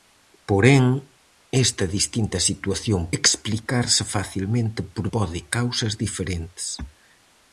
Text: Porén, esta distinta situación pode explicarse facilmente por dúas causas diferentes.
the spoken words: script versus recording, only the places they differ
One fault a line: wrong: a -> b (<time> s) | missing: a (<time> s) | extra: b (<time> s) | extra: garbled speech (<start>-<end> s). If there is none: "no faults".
missing: pode (3.0 s)
wrong: dúas -> pode (5.1 s)